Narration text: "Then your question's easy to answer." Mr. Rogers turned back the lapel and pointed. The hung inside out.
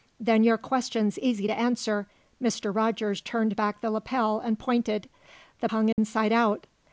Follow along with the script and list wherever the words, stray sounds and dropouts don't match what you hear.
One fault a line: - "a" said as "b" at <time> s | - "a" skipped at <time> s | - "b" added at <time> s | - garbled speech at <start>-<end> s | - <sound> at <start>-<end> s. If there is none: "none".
- dropout at 5.9-6.0 s